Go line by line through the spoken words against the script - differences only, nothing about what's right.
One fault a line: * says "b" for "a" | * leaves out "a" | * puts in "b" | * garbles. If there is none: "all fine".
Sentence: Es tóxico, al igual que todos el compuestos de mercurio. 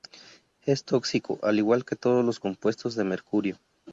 * says "los" for "el"